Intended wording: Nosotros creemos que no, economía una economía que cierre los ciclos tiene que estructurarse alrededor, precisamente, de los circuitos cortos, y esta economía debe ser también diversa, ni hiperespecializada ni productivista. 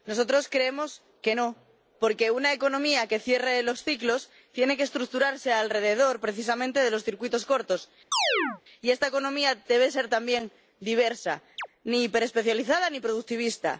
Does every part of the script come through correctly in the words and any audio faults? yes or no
no